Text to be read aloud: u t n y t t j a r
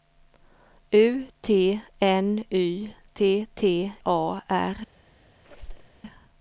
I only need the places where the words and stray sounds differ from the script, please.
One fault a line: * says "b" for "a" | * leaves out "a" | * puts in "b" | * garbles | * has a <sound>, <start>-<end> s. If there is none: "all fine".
* leaves out "j"
* has a squeak, 5.4-6.0 s